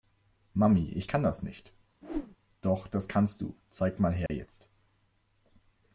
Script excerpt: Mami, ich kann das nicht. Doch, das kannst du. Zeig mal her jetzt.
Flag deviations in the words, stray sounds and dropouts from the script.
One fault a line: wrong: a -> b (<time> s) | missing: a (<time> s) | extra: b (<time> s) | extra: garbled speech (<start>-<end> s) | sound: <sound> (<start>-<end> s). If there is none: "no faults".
sound: whoosh (2.0-2.4 s)
sound: dropout (4.3-4.3 s)